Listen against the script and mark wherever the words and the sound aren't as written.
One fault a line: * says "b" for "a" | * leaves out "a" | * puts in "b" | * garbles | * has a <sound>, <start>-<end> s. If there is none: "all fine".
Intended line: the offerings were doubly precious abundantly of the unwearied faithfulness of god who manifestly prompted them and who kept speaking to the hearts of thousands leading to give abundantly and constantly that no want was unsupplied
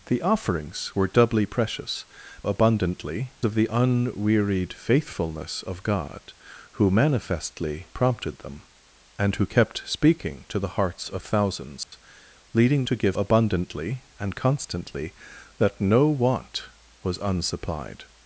* has a dropout, 11.8-11.9 s